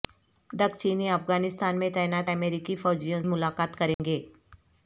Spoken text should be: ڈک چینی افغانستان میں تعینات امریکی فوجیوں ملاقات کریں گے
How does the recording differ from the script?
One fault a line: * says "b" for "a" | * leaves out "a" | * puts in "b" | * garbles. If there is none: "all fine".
all fine